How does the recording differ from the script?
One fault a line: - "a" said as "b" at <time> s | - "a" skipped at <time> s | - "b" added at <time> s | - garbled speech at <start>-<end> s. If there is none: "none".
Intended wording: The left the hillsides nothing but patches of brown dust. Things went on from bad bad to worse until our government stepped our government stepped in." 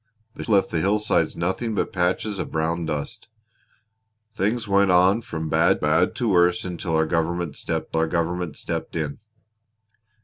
none